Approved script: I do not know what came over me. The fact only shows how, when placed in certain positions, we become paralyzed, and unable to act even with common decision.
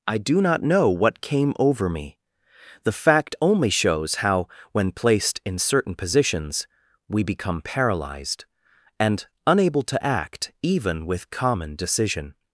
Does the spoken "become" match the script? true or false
true